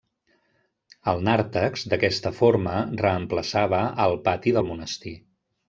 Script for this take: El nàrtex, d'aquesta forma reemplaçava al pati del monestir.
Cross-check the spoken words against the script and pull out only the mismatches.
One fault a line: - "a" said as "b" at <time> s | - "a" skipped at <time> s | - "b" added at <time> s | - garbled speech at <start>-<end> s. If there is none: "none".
none